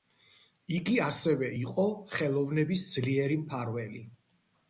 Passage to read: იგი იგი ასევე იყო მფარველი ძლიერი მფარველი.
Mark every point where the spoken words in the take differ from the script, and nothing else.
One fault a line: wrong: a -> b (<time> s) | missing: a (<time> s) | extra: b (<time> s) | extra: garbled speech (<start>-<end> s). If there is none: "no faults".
missing: იგი (0.9 s)
wrong: მფარველი -> ხელოვნების (2.1 s)